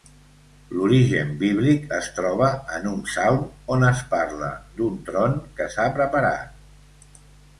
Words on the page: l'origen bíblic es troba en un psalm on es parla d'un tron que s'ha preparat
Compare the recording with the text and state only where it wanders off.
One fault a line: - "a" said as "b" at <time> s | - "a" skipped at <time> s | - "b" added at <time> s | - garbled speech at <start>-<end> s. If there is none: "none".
none